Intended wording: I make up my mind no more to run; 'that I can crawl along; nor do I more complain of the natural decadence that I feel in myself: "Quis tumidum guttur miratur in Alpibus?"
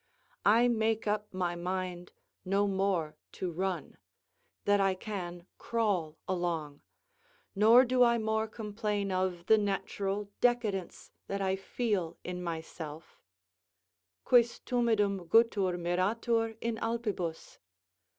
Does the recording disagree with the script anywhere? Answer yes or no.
no